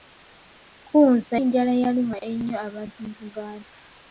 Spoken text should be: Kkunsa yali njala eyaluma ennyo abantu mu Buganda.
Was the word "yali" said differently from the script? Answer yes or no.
yes